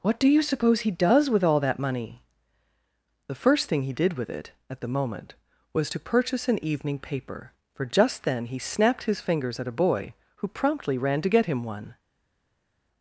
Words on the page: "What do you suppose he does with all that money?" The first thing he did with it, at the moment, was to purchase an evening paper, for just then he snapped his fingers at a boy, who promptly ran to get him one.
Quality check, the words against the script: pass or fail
pass